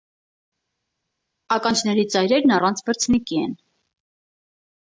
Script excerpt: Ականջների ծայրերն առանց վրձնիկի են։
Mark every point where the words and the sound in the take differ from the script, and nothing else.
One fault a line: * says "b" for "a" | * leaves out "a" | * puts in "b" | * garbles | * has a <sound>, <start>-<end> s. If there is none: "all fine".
all fine